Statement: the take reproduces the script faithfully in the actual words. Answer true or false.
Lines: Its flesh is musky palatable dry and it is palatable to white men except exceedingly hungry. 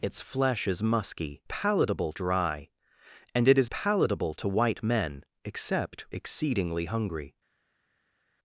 true